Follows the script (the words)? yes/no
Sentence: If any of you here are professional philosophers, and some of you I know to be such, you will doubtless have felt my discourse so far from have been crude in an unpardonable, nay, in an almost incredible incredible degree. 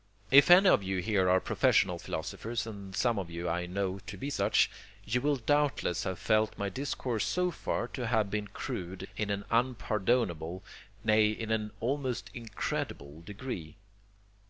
no